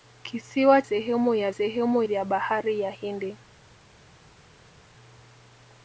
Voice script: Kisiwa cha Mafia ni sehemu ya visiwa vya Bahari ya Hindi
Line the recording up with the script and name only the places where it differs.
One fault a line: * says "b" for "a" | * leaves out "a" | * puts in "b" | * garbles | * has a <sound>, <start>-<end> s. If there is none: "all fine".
* leaves out "cha Mafia ni"
* says "sehemu" for "visiwa"